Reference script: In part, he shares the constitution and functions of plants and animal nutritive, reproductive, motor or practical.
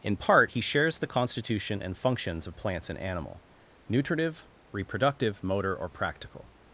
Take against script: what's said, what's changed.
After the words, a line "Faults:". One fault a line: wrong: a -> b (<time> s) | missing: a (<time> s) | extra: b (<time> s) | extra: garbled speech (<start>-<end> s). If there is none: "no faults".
In part, he shares the constitution and functions of plants and animal nutritive, reproductive, motor or practical.
Faults:
no faults